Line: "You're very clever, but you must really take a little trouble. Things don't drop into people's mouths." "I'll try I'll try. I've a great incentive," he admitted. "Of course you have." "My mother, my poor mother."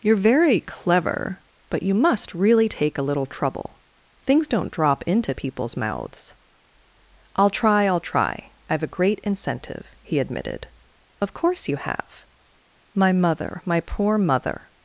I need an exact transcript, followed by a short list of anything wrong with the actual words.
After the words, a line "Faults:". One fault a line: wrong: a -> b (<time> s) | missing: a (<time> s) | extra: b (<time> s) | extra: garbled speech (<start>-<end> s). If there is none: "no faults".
"You're very clever, but you must really take a little trouble. Things don't drop into people's mouths." "I'll try I'll try. I've a great incentive," he admitted. "Of course you have." "My mother, my poor mother."
Faults:
no faults